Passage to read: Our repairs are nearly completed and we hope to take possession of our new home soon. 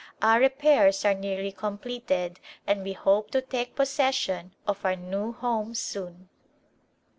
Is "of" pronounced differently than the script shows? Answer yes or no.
no